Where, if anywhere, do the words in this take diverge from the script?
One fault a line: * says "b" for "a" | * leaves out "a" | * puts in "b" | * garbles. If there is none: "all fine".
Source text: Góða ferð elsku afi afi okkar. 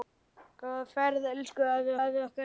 all fine